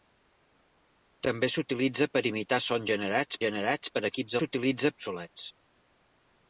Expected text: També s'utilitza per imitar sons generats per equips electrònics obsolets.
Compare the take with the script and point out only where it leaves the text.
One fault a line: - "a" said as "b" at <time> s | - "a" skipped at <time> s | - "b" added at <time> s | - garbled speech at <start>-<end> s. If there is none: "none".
- "generats" added at 3.4 s
- "electrònics" said as "s'utilitza" at 4.4 s